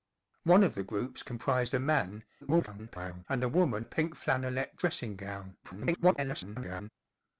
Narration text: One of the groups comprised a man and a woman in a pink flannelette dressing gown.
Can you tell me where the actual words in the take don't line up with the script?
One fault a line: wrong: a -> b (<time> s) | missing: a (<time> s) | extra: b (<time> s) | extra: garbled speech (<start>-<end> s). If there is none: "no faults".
extra: garbled speech (2.4-3.3 s)
missing: in (3.9 s)
extra: garbled speech (5.6-6.9 s)